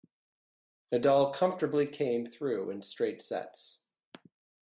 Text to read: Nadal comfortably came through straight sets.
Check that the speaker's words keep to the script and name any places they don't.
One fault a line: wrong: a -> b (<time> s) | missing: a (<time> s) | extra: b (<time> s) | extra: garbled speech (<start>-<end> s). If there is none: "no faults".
extra: in (2.7 s)